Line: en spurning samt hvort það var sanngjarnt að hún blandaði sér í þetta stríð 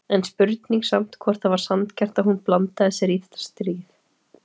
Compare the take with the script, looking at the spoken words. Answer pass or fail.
pass